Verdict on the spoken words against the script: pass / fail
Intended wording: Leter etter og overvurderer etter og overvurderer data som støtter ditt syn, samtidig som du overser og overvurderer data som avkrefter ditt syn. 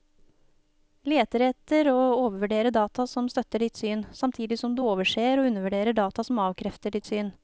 fail